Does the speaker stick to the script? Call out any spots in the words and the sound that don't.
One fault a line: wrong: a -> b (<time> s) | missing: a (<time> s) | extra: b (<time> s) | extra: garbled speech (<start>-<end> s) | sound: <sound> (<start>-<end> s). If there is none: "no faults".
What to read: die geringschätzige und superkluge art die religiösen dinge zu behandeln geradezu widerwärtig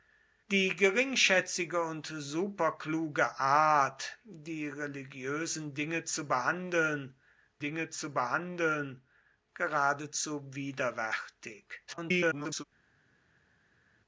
extra: dinge zu behandeln (7.6 s)
extra: garbled speech (11.9-12.6 s)